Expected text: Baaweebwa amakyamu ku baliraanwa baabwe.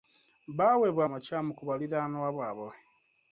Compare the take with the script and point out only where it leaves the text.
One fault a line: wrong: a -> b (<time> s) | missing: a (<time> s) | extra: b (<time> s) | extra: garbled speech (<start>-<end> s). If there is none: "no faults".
no faults